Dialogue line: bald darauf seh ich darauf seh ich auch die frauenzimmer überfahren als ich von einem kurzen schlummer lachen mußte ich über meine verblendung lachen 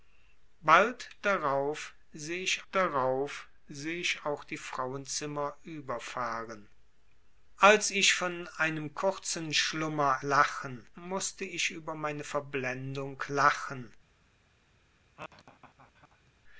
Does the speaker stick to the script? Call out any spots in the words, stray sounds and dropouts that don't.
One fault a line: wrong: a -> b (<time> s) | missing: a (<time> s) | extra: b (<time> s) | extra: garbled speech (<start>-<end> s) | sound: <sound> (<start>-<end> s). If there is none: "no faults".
sound: laugh (15.2-16.3 s)